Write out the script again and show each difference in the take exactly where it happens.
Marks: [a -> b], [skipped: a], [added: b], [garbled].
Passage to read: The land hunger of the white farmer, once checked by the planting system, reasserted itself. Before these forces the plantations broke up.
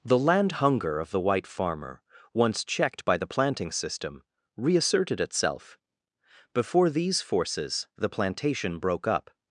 The land hunger of the white farmer, once checked by the planting system, reasserted itself. Before these forces the [plantations -> plantation] broke up.